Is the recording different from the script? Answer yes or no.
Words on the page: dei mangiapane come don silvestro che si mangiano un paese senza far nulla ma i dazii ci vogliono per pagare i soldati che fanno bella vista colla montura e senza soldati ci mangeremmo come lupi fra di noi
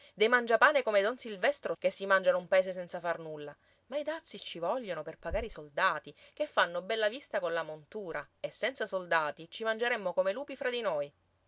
no